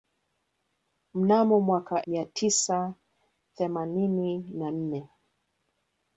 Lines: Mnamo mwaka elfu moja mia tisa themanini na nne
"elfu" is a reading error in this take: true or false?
true